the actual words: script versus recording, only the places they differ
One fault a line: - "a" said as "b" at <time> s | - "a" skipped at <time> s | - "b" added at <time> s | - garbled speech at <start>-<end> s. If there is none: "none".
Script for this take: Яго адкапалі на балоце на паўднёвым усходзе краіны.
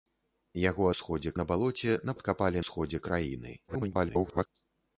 - "адкапалі" said as "усходзе" at 0.9 s
- "паўднёвым" said as "адкапалі" at 2.2 s
- garbled speech at 3.7-4.5 s